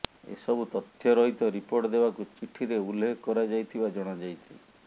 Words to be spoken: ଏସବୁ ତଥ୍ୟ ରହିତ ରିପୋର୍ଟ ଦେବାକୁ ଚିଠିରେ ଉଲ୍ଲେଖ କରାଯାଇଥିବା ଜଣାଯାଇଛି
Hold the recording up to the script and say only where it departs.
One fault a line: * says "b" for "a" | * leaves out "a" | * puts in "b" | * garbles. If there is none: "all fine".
all fine